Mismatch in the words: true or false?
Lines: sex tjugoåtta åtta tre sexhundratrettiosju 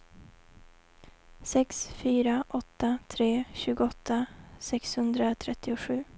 true